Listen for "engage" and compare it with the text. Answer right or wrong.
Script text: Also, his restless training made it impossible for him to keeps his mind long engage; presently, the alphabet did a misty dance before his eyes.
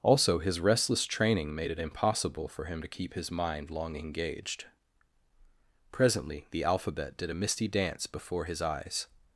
wrong